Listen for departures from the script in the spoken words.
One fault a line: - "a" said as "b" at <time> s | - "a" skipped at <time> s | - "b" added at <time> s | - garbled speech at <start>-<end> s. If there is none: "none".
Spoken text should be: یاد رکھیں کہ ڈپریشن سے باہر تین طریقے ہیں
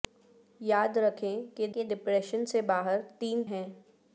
- "کہ" added at 1.7 s
- "طریقے" skipped at 3.4 s